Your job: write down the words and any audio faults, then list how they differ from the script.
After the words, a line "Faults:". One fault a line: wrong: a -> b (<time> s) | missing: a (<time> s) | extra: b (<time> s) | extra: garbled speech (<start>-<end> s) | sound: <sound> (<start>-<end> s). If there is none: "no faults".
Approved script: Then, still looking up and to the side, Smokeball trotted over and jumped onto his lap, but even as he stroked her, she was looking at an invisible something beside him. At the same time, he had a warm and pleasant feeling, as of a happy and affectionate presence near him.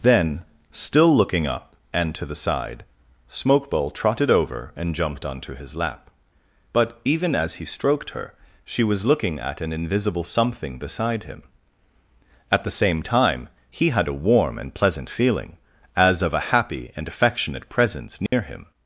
Then, still looking up and to the side, Smokeball trotted over and jumped onto his lap, but even as he stroked her, she was looking at an invisible something beside him. At the same time, he had a warm and pleasant feeling, as of a happy and affectionate presence near him.
Faults:
sound: dropout (18.3-18.3 s)